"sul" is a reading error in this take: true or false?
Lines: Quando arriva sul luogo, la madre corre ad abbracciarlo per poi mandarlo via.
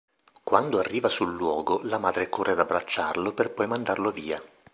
false